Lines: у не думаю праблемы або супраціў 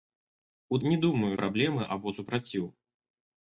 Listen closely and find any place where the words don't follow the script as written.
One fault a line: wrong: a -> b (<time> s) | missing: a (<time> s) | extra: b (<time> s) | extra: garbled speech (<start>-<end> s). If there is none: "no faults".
no faults